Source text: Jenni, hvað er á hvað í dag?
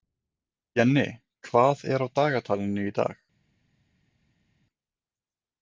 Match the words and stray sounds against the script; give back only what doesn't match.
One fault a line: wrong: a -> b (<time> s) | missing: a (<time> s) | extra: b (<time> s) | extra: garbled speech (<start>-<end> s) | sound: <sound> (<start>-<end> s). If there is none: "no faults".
wrong: hvað -> dagatalinu (2.2 s)